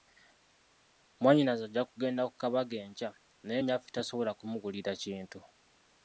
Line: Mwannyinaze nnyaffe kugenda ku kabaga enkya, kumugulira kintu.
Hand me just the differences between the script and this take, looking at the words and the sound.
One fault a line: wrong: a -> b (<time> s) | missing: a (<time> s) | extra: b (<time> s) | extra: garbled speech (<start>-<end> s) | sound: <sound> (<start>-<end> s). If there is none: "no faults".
wrong: nnyaffe -> ajja (1.7 s)
extra: naye nnyaffe tasobola (3.5 s)